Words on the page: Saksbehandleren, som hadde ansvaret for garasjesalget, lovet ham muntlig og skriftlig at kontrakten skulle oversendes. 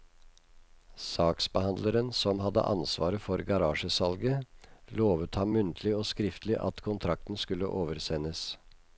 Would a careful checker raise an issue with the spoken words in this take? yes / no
no